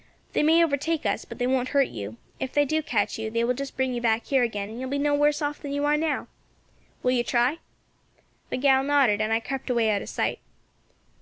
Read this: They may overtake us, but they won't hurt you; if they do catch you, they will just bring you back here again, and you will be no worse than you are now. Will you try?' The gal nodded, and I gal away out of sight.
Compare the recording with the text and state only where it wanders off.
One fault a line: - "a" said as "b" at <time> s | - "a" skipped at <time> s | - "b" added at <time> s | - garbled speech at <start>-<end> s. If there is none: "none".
- "off" added at 5.4 s
- "gal" said as "crept" at 9.4 s